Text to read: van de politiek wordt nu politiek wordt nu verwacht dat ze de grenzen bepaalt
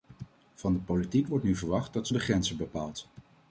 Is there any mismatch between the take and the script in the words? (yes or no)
yes